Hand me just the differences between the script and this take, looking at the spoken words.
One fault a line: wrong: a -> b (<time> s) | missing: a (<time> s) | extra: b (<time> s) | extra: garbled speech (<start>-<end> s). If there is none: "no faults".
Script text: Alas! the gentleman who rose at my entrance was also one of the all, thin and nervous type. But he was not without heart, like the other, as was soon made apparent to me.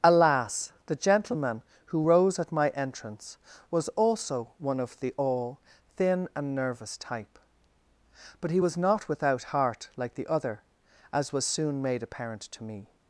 no faults